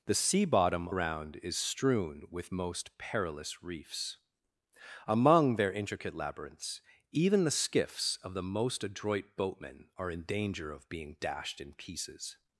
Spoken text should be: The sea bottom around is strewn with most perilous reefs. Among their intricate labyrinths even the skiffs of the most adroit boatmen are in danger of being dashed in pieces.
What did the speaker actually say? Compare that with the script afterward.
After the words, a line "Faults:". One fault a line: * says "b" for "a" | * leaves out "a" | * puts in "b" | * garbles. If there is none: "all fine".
The sea bottom around is strewn with most perilous reefs. Among their intricate labyrinths even the skiffs of the most adroit boatmen are in danger of being dashed in pieces.
Faults:
all fine